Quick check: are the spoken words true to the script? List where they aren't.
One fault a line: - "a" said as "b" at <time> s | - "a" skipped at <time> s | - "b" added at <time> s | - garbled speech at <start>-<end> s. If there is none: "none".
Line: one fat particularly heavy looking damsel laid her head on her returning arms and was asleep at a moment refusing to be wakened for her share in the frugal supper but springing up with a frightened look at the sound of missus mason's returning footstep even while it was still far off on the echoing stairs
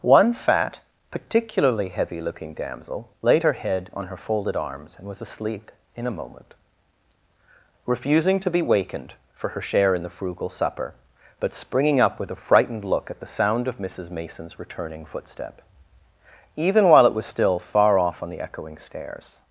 - "returning" said as "folded" at 4.2 s
- "at" said as "in" at 5.9 s